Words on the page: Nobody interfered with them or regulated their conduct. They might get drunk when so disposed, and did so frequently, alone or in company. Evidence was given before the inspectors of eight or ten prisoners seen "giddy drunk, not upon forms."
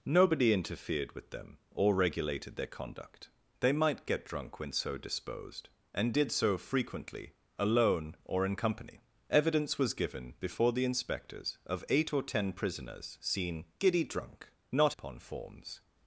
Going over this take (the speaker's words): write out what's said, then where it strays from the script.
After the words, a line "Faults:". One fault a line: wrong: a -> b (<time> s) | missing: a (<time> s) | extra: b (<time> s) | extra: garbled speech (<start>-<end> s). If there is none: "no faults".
Nobody interfered with them or regulated their conduct. They might get drunk when so disposed, and did so frequently, alone or in company. Evidence was given before the inspectors of eight or ten prisoners seen "giddy drunk, not upon forms."
Faults:
no faults